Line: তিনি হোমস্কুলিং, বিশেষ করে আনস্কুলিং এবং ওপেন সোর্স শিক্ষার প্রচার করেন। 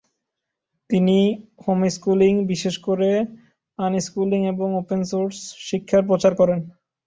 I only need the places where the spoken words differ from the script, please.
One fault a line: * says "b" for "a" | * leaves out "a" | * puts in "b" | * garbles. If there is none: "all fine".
all fine